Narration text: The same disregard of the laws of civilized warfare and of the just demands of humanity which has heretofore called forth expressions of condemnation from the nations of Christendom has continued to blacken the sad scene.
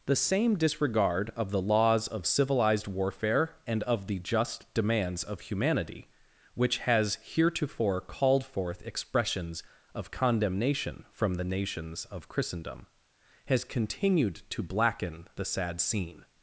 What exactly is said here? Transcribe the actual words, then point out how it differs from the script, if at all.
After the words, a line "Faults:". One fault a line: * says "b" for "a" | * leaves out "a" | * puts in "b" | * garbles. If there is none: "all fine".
The same disregard of the laws of civilized warfare and of the just demands of humanity which has heretofore called forth expressions of condemnation from the nations of Christendom has continued to blacken the sad scene.
Faults:
all fine